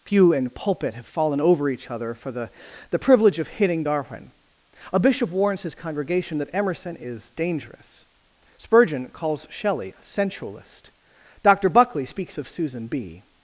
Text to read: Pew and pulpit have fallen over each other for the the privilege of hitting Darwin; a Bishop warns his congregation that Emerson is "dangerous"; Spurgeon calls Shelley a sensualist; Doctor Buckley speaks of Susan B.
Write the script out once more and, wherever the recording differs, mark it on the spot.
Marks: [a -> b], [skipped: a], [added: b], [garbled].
Pew and pulpit have fallen over each other for the the privilege of hitting Darwin; a Bishop warns his congregation that Emerson is "dangerous"; Spurgeon calls Shelley a sensualist; Doctor Buckley speaks of Susan B.